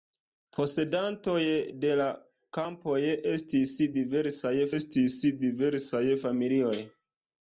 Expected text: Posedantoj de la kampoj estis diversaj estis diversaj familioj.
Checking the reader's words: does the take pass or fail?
pass